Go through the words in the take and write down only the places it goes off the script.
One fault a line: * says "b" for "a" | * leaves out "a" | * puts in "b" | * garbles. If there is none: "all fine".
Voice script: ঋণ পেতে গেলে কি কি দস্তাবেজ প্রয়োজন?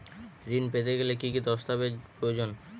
all fine